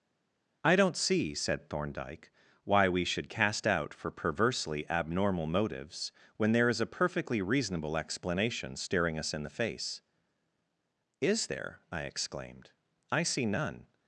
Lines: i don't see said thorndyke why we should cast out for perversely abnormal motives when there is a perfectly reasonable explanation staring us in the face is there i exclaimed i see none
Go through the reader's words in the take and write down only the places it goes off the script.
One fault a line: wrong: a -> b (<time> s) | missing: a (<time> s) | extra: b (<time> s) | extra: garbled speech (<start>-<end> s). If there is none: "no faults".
no faults